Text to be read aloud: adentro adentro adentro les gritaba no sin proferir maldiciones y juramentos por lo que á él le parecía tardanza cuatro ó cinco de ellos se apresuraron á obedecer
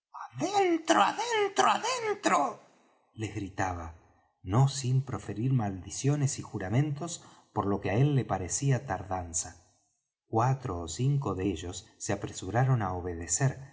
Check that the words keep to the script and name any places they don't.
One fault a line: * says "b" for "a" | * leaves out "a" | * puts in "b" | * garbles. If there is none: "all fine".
all fine